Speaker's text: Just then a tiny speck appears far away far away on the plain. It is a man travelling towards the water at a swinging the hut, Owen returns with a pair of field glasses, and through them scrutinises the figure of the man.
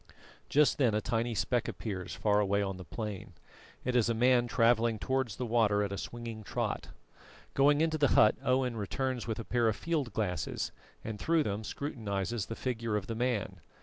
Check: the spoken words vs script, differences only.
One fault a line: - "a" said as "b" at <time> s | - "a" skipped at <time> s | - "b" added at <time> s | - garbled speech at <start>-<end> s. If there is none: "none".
- "far away" skipped at 2.6 s
- "trot Going into" added at 6.4 s